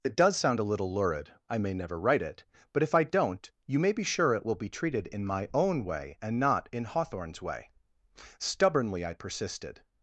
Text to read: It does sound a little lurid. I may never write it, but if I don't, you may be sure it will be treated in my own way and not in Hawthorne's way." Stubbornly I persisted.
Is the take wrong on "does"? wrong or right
right